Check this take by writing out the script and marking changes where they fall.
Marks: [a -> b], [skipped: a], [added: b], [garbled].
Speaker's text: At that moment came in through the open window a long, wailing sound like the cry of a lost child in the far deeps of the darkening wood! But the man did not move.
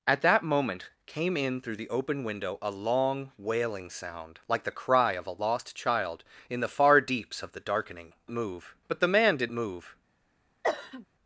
At that moment came in through the open window a long, wailing sound like the cry of a lost child in the far deeps of the darkening [wood! -> move] But the man did [skipped: not] move.